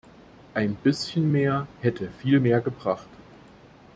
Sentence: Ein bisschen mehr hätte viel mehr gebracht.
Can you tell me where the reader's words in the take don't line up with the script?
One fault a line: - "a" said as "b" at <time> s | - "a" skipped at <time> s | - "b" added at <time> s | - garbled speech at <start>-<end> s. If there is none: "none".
none